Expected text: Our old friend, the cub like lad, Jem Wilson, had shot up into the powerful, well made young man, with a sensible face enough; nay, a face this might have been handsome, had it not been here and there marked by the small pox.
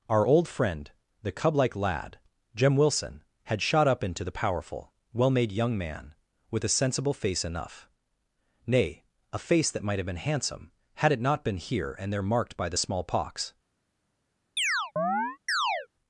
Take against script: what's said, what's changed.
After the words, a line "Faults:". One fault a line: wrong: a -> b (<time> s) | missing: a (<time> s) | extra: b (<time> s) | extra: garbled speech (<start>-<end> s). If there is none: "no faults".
Our old friend, the cub like lad, Jem Wilson, had shot up into the powerful, well made young man, with a sensible face enough; nay, a face that might have been handsome, had it not been here and there marked by the small pox.
Faults:
wrong: this -> that (9.7 s)